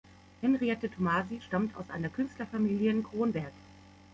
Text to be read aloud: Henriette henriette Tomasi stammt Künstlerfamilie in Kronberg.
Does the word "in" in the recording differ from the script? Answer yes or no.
no